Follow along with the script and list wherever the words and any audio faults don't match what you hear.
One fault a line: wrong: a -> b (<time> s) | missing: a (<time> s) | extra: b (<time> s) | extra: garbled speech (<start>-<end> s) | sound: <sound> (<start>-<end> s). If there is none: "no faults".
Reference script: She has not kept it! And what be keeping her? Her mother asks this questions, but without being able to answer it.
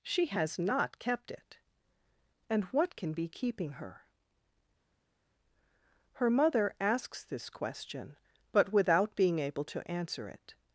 extra: can (3.0 s)
wrong: questions -> question (7.5 s)